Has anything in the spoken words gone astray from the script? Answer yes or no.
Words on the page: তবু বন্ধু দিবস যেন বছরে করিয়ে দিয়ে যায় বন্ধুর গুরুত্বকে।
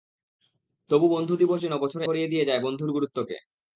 no